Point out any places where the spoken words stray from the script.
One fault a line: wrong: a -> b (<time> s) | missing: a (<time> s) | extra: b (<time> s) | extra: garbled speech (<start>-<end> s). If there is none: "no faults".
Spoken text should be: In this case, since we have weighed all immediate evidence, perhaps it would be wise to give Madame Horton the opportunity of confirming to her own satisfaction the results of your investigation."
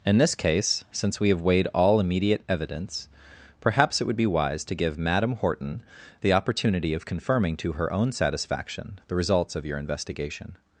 no faults